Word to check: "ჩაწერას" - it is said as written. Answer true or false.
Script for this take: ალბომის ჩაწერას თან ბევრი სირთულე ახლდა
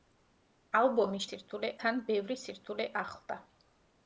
false